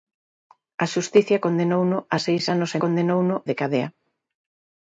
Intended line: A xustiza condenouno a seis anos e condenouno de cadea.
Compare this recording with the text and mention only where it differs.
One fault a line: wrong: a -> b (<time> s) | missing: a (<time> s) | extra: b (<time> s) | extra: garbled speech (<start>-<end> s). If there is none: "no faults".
no faults